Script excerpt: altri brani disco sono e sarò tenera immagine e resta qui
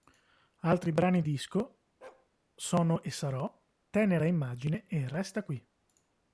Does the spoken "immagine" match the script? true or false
true